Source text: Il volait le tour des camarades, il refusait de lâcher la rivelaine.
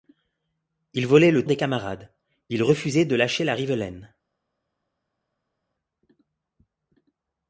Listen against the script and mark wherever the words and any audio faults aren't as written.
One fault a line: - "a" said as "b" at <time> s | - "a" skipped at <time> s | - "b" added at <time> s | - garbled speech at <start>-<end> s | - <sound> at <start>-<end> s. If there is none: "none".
- "tour" skipped at 1.4 s